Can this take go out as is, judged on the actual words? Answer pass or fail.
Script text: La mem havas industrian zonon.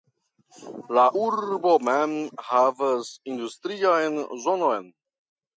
fail